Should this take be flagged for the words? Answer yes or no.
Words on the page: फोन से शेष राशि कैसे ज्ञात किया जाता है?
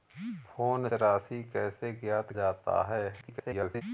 yes